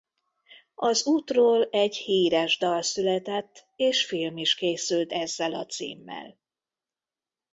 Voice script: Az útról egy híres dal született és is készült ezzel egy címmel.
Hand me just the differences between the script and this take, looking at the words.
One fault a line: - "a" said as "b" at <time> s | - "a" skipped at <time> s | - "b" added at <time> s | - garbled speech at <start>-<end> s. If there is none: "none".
- "film" added at 4.0 s
- "egy" said as "a" at 5.5 s